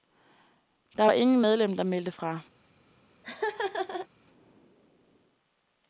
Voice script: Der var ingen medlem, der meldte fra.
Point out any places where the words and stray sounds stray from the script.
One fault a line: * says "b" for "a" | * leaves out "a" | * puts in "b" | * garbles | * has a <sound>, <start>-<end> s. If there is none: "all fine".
* has a laugh, 3.2-4.1 s